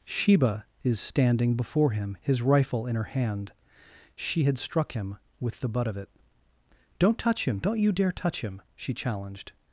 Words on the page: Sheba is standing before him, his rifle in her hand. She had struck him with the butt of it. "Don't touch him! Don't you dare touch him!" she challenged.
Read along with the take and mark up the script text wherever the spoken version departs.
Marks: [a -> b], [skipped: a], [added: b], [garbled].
Sheba is standing before him, his rifle in her hand. She had struck him with the butt of it. "Don't touch him! Don't you dare touch him!" she challenged.